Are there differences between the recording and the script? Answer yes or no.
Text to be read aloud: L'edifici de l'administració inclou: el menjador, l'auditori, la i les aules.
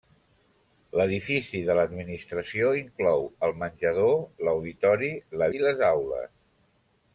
no